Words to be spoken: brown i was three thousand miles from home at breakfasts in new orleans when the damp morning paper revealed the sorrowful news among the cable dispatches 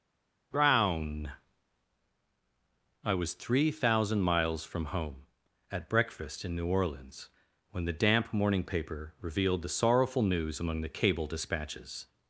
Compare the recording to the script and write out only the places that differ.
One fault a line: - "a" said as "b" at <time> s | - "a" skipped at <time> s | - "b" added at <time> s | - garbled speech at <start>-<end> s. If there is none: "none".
- "breakfasts" said as "breakfast" at 5.9 s